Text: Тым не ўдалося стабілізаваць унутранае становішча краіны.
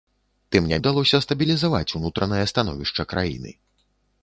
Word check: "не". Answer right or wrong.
right